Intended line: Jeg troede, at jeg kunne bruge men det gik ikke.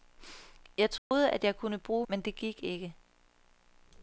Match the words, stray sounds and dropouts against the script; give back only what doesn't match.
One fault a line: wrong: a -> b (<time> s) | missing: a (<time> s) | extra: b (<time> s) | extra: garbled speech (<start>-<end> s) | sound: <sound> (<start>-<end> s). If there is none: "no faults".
sound: dropout (1.0-1.1 s)